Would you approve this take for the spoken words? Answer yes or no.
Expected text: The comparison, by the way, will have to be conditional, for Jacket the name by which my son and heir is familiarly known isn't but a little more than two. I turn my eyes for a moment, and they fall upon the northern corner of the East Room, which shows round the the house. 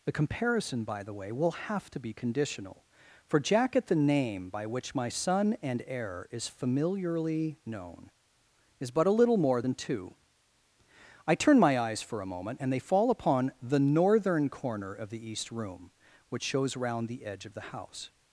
no